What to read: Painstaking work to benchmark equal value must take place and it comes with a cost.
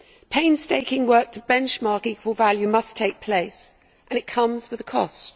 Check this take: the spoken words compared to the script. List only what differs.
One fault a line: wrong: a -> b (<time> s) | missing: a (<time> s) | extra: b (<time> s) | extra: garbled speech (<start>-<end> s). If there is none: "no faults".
no faults